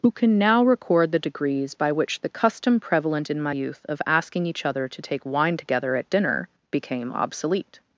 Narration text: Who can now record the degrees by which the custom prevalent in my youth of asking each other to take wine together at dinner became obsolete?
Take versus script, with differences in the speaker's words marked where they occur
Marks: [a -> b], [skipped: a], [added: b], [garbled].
Who can now record the degrees by which the custom prevalent in my youth of asking each other to take wine together at dinner became obsolete?